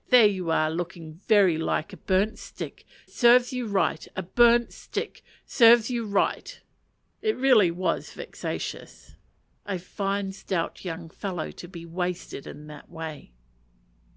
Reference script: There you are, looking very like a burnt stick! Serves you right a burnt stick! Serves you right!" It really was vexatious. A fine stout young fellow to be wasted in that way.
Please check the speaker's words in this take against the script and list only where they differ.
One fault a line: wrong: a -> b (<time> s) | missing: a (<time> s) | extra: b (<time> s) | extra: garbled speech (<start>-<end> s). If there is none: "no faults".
no faults